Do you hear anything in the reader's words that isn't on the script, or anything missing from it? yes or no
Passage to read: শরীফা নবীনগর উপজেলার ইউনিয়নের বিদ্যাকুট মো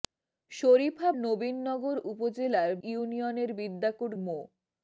no